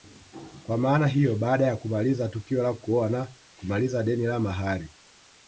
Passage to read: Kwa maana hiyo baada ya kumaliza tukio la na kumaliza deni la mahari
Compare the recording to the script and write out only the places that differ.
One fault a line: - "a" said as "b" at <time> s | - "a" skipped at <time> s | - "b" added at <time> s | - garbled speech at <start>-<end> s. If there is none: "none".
- "kuoa" added at 2.7 s